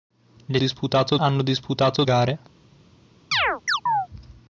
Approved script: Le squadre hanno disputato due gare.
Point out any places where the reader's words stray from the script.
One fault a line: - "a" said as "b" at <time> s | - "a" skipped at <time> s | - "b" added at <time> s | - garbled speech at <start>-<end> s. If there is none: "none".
- "squadre" said as "disputato" at 0.6 s
- "due" skipped at 2.0 s